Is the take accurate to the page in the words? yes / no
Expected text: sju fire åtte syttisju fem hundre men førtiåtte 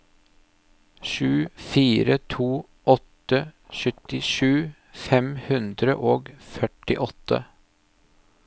no